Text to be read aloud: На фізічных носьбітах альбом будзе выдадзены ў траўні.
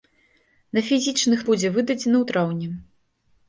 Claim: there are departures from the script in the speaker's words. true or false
true